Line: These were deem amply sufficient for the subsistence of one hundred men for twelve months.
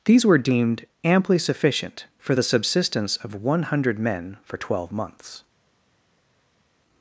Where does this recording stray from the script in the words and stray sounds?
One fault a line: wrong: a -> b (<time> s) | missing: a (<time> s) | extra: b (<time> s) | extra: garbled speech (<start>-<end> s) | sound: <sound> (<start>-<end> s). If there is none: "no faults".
wrong: deem -> deemed (0.4 s)